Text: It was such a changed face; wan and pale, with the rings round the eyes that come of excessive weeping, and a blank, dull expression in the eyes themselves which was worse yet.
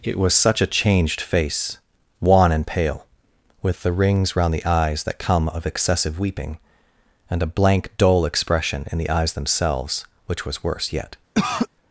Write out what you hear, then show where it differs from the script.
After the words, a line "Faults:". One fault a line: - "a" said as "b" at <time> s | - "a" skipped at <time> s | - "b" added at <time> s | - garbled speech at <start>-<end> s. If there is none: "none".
It was such a changed face; wan and pale, with the rings round the eyes that come of excessive weeping, and a blank, dull expression in the eyes themselves which was worse yet.
Faults:
none